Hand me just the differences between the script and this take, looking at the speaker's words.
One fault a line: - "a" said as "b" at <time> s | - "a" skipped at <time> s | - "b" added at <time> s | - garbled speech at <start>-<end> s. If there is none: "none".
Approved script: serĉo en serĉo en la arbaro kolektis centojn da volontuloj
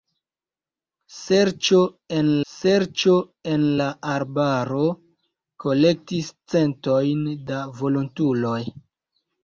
none